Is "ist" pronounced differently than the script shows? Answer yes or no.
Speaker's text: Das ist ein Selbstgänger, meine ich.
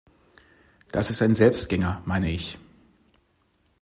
no